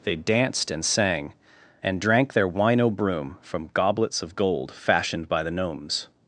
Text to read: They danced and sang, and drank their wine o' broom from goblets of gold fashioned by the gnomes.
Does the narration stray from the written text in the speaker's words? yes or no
no